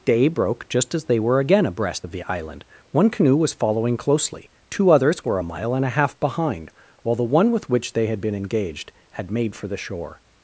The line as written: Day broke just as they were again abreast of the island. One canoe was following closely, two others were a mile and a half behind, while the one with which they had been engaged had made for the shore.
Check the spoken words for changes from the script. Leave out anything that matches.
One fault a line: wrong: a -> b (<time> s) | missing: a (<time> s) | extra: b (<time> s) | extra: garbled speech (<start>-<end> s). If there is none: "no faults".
no faults